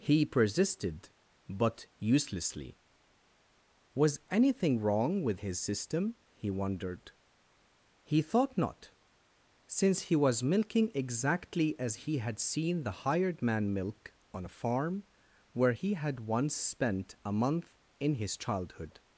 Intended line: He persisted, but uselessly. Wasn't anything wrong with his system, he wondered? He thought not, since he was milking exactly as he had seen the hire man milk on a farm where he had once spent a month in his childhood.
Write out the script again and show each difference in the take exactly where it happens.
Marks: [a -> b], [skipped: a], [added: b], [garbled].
He persisted, but uselessly. [Wasn't -> Was] anything wrong with his system, he wondered? He thought not, since he was milking exactly as he had seen the [hire -> hired] man milk on a farm where he had once spent a month in his childhood.